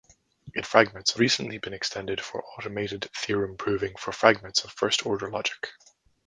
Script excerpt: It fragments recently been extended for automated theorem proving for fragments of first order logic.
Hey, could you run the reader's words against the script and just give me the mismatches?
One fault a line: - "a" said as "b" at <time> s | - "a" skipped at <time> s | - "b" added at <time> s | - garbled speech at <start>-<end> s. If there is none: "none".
none